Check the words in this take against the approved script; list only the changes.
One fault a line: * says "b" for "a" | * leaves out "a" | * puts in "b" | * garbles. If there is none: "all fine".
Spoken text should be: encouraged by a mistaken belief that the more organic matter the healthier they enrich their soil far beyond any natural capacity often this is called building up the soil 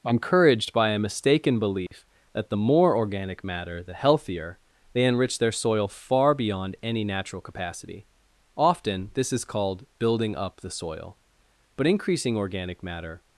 * puts in "but increasing organic matter"